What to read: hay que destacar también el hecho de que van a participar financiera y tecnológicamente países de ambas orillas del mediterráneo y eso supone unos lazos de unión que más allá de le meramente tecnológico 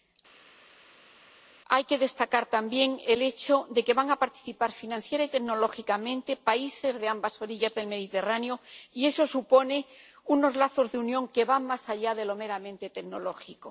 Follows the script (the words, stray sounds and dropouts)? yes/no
no